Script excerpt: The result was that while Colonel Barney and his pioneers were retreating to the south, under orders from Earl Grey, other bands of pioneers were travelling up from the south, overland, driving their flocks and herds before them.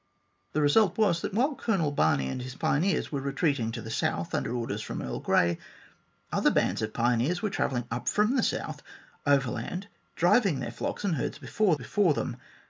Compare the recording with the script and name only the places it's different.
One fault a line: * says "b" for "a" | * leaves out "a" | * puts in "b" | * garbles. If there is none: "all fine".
* puts in "before"